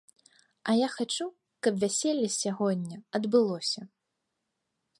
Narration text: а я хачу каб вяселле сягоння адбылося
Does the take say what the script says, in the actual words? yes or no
yes